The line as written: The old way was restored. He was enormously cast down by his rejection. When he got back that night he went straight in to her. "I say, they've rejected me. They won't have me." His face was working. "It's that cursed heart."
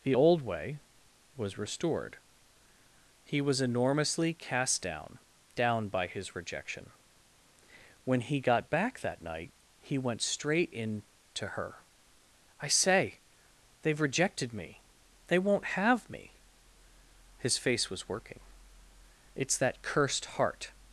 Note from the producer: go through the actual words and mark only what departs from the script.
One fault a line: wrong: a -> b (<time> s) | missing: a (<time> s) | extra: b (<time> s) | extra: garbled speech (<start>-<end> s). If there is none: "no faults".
extra: down (5.5 s)